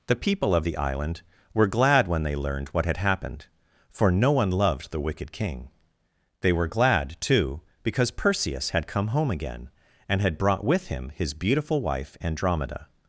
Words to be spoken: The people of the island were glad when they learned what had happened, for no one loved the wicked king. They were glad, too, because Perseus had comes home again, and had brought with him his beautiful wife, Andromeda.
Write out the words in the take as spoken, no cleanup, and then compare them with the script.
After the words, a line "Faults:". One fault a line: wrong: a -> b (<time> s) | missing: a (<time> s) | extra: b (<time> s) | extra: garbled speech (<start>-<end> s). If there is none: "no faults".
The people of the island were glad when they learned what had happened, for no one loved the wicked king. They were glad, too, because Perseus had come home again, and had brought with him his beautiful wife, Andromeda.
Faults:
wrong: comes -> come (8.9 s)